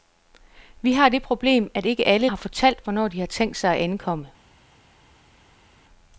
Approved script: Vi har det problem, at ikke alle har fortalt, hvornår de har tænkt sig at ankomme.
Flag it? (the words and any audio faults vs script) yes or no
no